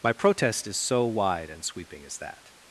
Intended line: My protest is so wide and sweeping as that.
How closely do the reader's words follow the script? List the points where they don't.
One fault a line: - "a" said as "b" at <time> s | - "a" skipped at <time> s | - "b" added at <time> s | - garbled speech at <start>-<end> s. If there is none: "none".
none